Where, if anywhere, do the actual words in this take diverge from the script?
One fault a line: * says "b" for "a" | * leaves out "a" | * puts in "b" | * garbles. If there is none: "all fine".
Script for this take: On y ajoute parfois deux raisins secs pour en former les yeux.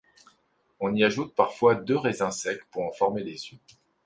all fine